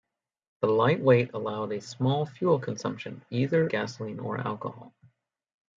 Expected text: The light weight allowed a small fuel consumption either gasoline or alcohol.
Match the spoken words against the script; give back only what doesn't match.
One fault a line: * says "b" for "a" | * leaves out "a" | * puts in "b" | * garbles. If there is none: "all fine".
all fine